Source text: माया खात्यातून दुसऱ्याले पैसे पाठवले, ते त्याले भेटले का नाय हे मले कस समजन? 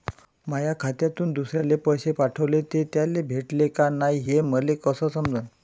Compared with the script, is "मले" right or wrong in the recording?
right